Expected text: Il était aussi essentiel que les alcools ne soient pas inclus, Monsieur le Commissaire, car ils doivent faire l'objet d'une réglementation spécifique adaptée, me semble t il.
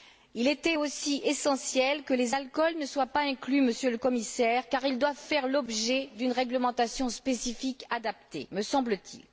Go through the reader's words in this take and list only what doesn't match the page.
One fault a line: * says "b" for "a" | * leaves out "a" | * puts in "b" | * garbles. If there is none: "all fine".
all fine